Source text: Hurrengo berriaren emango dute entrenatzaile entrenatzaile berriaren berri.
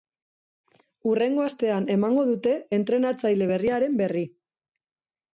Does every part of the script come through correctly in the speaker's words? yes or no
no